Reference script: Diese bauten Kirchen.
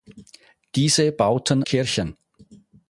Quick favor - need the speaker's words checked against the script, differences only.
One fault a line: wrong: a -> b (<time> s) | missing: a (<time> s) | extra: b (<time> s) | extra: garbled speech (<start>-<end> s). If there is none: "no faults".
no faults